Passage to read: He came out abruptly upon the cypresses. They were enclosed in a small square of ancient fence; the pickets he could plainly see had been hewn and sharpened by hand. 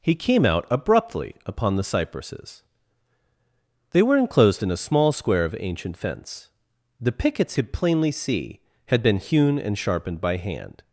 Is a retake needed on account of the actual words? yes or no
yes